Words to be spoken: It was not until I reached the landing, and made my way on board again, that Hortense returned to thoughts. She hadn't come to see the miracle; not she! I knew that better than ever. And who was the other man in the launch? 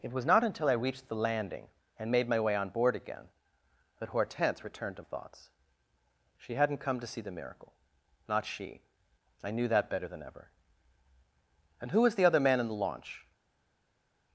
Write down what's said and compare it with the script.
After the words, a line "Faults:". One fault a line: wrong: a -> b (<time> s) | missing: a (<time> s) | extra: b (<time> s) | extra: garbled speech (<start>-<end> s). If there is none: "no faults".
It was not until I reached the landing, and made my way on board again, that Hortense returned to thoughts. She hadn't come to see the miracle; not she! I knew that better than ever. And who was the other man in the launch?
Faults:
no faults